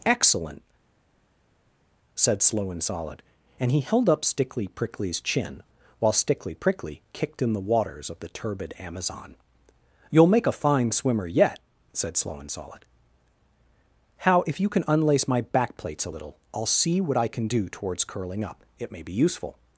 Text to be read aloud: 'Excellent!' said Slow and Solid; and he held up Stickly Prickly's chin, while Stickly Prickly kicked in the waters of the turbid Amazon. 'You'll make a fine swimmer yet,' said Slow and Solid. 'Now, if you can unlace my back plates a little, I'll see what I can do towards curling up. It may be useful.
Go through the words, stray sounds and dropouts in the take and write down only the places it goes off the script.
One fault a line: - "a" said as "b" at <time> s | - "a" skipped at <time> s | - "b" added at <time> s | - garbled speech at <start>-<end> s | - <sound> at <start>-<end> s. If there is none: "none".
- "Now" said as "How" at 14.2 s